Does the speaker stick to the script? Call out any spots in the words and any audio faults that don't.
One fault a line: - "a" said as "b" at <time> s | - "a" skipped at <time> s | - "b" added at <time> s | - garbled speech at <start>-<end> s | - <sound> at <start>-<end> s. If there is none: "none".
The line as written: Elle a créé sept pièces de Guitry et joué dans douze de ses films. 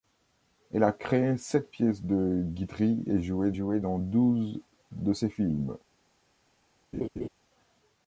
- "joué" added at 3.5 s
- laugh at 6.9-7.3 s